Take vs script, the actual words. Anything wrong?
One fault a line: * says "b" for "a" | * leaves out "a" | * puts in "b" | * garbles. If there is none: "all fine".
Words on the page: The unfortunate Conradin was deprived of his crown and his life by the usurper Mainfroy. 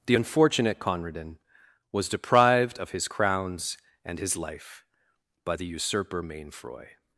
* says "crowns" for "crown"